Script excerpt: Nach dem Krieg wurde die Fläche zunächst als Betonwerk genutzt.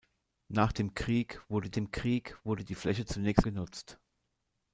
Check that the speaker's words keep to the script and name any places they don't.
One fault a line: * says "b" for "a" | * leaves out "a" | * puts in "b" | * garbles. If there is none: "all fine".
* puts in "dem Krieg wurde"
* leaves out "als Betonwerk"